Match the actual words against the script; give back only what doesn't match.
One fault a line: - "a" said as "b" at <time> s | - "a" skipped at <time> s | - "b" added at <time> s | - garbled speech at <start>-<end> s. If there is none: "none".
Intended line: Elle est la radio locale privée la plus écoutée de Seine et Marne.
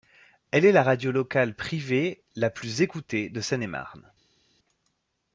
none